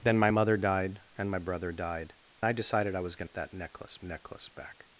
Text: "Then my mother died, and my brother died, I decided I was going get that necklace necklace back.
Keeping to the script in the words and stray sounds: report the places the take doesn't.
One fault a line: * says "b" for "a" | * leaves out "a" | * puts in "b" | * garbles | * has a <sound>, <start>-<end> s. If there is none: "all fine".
all fine